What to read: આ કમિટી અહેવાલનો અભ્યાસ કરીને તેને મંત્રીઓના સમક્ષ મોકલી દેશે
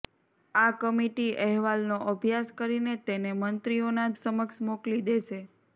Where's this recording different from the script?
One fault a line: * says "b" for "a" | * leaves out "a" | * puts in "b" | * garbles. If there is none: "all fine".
all fine